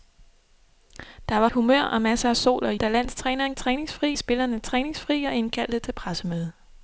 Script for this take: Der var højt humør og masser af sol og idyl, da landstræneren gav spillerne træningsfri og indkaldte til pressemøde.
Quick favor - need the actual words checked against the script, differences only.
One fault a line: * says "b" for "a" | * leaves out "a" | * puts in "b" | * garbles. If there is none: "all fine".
* leaves out "højt"
* leaves out "idyl"
* says "træningsfri" for "gav"